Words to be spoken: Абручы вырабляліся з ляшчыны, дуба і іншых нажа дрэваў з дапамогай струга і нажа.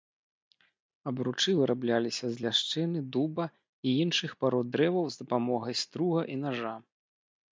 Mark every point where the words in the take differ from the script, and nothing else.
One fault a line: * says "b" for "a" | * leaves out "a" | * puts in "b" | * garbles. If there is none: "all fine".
* says "парод" for "нажа"